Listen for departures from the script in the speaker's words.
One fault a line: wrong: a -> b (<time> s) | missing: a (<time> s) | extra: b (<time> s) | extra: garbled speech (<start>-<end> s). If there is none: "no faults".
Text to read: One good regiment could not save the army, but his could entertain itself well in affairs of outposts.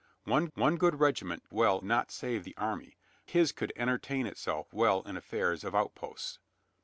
extra: one (0.5 s)
wrong: could -> well (1.5 s)
missing: but (3.0 s)